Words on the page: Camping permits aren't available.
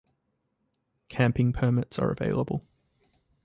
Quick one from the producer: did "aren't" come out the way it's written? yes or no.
no